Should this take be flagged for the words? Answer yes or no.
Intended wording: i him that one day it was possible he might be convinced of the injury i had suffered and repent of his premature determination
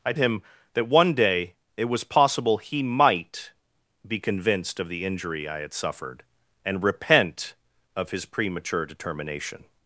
no